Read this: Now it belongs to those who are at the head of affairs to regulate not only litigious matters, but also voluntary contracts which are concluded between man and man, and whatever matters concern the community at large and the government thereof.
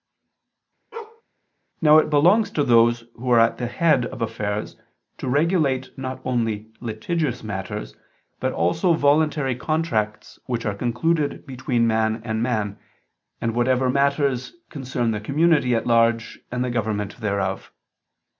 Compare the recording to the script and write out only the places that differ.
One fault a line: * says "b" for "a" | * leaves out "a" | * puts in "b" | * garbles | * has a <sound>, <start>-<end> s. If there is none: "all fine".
* has a bark, 0.9-1.2 s